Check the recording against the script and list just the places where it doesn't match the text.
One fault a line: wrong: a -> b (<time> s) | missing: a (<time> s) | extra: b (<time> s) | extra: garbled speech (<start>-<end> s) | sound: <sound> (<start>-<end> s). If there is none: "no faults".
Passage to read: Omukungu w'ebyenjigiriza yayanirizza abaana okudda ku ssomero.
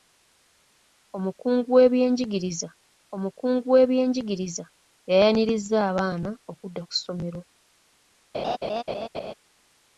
extra: omukungu w'ebyenjigiriza (3.1 s)
sound: laugh (8.3-9.3 s)